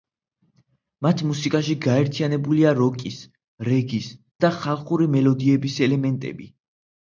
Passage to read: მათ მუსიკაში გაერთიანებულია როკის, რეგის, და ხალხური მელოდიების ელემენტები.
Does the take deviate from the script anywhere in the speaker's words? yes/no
no